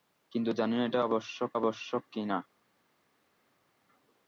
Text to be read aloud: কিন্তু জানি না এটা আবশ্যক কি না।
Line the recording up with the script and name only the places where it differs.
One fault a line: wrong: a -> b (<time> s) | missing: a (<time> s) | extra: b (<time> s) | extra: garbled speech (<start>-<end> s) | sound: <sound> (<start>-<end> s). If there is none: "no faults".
extra: আবশ্যক (1.6 s)